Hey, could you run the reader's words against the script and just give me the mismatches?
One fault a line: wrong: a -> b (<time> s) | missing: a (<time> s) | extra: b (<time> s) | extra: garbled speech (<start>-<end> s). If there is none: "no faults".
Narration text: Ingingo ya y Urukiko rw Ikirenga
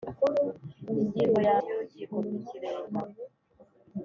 no faults